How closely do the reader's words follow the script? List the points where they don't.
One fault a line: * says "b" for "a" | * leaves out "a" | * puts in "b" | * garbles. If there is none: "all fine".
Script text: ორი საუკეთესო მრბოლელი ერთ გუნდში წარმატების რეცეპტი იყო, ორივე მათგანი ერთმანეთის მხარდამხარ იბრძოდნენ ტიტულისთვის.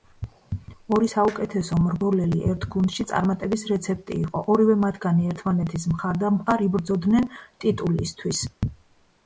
all fine